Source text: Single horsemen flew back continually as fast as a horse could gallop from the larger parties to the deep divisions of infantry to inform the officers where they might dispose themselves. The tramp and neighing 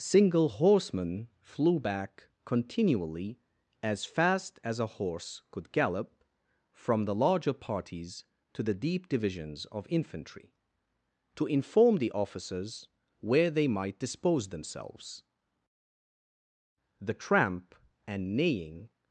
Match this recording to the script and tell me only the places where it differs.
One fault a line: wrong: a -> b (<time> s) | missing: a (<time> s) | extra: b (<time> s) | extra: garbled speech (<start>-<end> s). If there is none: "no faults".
no faults